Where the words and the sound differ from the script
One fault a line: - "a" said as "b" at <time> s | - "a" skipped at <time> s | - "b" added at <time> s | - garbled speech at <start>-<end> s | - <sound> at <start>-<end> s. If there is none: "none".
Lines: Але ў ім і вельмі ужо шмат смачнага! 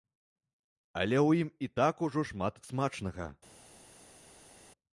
- "вельмі" said as "так" at 1.8 s